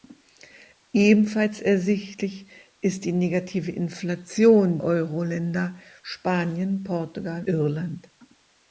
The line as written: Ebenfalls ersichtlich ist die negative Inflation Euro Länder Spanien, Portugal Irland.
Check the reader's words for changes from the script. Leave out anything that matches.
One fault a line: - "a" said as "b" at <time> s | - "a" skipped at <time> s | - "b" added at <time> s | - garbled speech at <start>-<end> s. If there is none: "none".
none